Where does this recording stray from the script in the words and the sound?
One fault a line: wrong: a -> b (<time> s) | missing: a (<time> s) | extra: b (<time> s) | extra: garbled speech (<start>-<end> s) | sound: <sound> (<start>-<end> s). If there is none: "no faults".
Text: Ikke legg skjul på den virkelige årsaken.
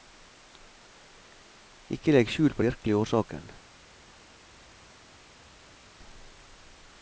missing: den (2.6 s)